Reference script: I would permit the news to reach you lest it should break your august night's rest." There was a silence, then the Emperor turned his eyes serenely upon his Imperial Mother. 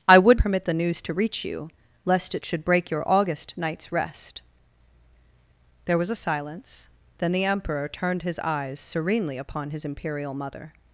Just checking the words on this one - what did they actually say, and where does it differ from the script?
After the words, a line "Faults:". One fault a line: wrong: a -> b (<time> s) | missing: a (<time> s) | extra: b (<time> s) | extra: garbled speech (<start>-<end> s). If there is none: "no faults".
I would permit the news to reach you lest it should break your august night's rest." There was a silence, then the Emperor turned his eyes serenely upon his Imperial Mother.
Faults:
no faults